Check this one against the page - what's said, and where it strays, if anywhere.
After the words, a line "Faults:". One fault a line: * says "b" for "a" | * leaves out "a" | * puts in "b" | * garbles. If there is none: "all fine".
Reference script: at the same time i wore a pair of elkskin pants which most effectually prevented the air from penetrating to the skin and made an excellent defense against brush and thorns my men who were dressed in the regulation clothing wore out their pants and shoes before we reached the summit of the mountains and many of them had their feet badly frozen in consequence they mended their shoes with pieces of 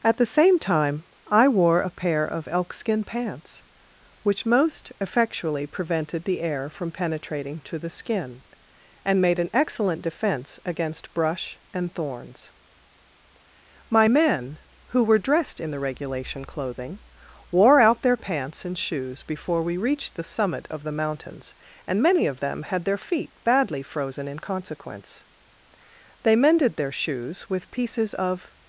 at the same time i wore a pair of elkskin pants which most effectually prevented the air from penetrating to the skin and made an excellent defense against brush and thorns my men who were dressed in the regulation clothing wore out their pants and shoes before we reached the summit of the mountains and many of them had their feet badly frozen in consequence they mended their shoes with pieces of
Faults:
all fine